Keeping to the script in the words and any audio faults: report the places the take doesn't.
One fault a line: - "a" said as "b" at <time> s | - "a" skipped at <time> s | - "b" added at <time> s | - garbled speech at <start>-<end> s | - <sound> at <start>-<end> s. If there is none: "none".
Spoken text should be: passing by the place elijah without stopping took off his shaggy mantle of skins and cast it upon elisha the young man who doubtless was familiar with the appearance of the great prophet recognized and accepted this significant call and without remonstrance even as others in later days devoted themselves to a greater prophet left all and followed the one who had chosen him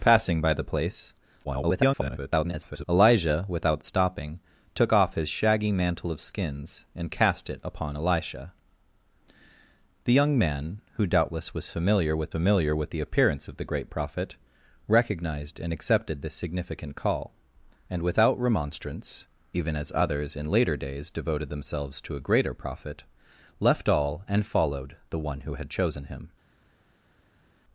- garbled speech at 1.4-2.8 s
- "familiar with" added at 12.3 s